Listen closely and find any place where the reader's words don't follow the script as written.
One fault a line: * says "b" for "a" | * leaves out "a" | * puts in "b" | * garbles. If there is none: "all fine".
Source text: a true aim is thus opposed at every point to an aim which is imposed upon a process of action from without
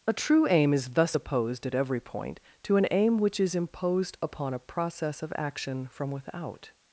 all fine